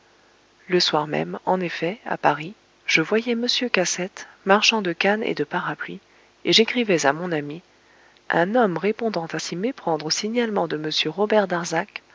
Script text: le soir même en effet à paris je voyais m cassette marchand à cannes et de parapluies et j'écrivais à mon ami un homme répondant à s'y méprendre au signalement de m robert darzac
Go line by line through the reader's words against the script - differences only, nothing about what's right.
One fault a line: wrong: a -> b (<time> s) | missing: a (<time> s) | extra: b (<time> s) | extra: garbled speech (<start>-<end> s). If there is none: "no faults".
wrong: à -> de (4.8 s)